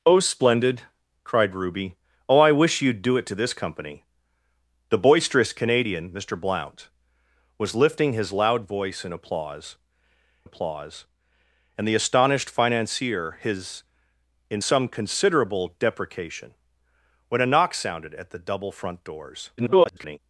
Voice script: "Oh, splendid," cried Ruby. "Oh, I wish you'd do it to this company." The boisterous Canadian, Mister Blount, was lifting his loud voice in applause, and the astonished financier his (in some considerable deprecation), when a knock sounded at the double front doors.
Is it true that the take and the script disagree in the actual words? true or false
true